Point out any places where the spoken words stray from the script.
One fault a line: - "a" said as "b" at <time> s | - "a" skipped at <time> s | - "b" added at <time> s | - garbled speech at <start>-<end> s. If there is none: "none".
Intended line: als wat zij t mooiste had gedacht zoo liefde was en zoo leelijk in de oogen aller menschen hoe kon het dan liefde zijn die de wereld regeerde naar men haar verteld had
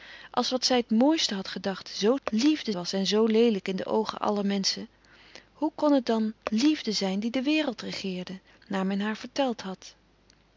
none